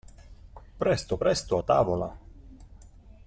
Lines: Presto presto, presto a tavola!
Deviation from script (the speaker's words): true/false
true